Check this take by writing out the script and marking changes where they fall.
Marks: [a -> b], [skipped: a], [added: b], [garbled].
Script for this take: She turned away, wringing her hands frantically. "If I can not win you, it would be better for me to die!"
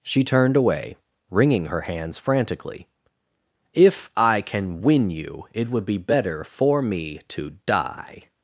She turned away, wringing her hands frantically. "If I can [skipped: not] win you, it would be better for me to die!"